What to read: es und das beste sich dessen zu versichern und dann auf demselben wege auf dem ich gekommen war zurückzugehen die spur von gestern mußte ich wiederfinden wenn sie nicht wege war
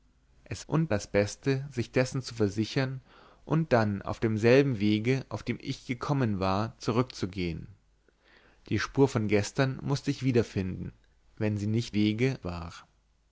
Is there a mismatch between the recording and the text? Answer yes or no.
no